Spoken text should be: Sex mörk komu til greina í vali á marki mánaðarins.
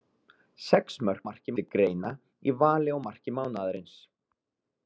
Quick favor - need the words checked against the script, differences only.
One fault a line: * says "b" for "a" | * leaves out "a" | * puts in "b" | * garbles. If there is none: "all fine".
* says "marki" for "komu"